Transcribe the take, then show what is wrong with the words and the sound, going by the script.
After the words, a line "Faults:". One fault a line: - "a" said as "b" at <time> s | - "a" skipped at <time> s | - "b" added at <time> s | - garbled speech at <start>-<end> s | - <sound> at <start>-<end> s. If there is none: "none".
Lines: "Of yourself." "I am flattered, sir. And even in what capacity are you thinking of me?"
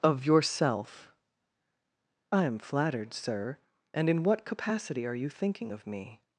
"Of yourself." "I am flattered, sir. And in what capacity are you thinking of me?"
Faults:
- "even" skipped at 4.1 s